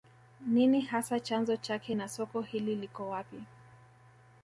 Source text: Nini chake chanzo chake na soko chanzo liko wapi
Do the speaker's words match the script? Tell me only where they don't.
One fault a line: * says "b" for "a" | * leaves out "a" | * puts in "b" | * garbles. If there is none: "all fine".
* says "hasa" for "chake"
* says "hili" for "chanzo"